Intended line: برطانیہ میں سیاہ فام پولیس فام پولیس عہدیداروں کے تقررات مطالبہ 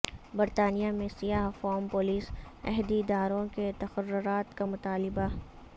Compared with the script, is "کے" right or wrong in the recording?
right